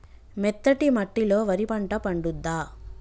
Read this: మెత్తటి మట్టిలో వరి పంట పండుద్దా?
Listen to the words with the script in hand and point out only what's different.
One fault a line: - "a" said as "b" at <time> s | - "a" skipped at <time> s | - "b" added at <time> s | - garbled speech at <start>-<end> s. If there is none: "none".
none